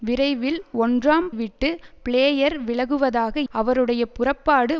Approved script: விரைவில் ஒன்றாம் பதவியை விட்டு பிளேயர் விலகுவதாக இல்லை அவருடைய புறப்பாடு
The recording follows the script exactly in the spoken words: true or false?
false